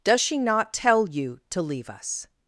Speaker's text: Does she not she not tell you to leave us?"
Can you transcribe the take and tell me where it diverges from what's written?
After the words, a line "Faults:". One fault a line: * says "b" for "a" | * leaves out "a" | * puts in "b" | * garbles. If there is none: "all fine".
Does she not tell you to leave us?"
Faults:
* leaves out "she not"